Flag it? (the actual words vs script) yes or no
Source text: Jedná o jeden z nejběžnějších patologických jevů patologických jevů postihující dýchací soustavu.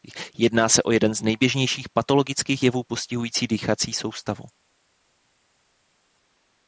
yes